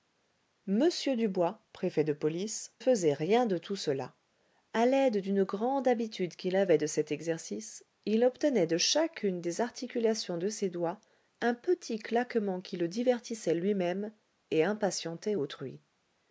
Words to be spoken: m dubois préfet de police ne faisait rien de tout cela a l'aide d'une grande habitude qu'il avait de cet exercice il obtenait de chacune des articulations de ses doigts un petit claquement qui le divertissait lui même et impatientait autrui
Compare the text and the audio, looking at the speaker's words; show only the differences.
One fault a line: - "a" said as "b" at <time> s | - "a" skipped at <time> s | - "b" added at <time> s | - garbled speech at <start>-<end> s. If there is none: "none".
- "ne" skipped at 2.7 s